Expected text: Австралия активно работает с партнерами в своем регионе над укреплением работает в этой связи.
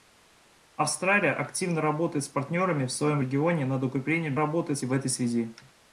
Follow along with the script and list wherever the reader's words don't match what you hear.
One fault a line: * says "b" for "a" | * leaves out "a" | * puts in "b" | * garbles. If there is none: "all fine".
all fine